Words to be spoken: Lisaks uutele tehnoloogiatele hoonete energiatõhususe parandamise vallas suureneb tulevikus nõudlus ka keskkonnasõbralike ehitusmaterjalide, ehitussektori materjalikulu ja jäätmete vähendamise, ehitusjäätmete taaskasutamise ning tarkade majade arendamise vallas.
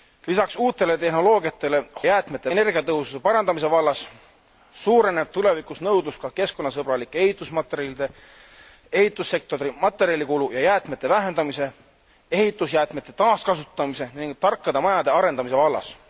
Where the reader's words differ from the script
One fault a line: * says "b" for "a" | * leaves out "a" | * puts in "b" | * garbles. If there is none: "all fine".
* says "jäätmete" for "hoonete"